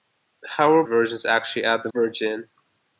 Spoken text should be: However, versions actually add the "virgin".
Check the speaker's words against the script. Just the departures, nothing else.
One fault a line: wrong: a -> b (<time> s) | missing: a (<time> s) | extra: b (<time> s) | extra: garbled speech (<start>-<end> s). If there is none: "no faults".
no faults